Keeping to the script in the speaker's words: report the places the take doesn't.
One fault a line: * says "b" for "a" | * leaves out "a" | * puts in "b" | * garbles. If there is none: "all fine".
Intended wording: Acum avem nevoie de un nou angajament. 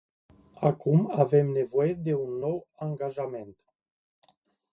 all fine